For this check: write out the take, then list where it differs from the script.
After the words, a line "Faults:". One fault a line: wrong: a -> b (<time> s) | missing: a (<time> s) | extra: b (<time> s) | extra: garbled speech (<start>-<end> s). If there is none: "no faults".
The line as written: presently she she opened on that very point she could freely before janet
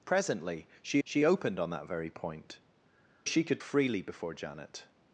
presently she she opened on that very point she could freely before janet
Faults:
no faults